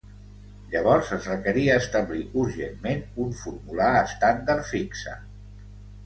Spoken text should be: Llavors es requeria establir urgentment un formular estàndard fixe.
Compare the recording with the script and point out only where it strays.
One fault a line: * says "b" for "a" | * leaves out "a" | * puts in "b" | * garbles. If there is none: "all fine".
all fine